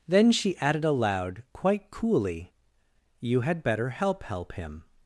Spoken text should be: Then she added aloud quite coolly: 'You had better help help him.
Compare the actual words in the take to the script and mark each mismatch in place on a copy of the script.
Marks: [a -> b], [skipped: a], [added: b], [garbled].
Then she added aloud quite coolly: 'You had better help help him.